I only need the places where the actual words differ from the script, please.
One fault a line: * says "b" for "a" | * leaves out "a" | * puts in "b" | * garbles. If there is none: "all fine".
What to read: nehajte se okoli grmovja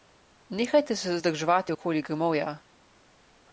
* puts in "zadrževati"